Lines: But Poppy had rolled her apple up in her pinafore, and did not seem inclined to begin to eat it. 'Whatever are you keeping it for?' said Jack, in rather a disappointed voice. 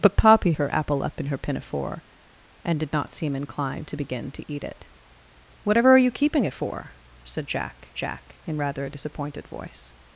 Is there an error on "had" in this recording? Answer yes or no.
yes